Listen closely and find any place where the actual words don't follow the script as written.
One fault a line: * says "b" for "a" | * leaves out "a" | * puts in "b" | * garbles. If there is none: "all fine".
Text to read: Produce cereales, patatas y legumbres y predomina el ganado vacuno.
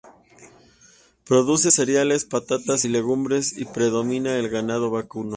all fine